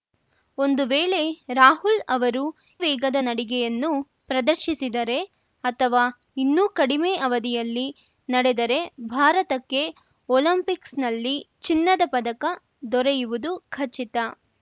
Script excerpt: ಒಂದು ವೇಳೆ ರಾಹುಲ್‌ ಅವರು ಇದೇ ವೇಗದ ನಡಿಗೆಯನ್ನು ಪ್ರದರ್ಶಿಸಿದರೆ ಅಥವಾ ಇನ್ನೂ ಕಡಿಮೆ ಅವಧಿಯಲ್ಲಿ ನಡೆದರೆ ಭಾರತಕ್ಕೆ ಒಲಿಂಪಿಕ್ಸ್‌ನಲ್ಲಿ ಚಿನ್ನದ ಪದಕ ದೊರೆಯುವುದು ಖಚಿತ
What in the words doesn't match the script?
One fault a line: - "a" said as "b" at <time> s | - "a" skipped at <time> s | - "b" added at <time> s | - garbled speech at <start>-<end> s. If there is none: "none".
- "ಇದೇ" skipped at 2.4 s